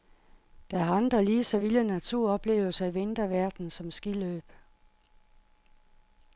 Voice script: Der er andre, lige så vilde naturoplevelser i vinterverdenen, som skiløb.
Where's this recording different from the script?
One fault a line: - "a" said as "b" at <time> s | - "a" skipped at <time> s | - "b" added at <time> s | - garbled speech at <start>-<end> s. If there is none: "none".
none